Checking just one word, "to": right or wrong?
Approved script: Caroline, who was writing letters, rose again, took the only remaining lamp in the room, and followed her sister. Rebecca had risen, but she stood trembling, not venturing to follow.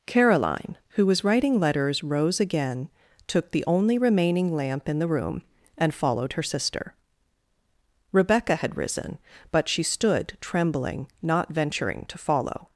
right